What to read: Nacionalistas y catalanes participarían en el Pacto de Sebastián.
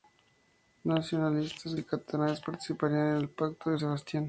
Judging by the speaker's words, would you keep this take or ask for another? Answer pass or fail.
pass